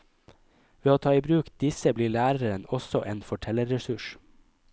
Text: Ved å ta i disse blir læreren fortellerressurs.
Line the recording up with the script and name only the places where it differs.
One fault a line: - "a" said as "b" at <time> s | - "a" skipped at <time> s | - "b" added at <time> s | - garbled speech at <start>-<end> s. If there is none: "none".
- "bruk" added at 1.3 s
- "også en" added at 2.8 s